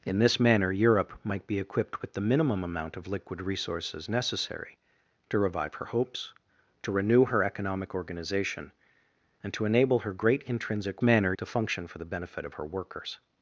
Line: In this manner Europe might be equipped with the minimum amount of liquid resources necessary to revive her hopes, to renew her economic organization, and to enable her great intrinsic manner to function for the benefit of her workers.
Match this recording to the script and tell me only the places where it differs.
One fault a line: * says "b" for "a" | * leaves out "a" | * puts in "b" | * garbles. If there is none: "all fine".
all fine